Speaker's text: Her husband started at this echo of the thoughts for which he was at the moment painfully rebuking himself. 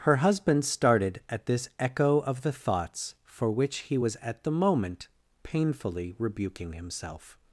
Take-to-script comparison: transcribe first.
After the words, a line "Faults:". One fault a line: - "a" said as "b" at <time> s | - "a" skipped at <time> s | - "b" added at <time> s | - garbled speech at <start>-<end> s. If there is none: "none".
Her husband started at this echo of the thoughts for which he was at the moment painfully rebuking himself.
Faults:
none